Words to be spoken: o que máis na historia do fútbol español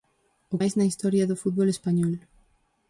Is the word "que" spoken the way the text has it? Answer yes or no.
no